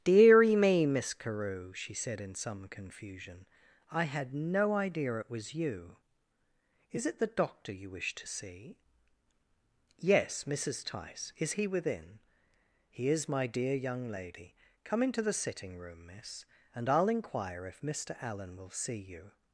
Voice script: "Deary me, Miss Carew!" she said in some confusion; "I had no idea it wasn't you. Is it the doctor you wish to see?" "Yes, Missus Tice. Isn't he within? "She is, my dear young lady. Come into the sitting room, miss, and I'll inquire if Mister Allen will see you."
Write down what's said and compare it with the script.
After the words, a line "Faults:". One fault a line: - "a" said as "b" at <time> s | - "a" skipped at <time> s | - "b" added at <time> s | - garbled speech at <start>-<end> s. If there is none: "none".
"Deary me, Miss Carew!" she said in some confusion; "I had no idea it was you. Is it the doctor you wish to see?" "Yes, Missus Tice. Is he within? "He is, my dear young lady. Come into the sitting room, miss, and I'll inquire if Mister Allen will see you."
Faults:
- "wasn't" said as "was" at 5.3 s
- "Isn't" said as "Is" at 11.4 s
- "She" said as "He" at 12.9 s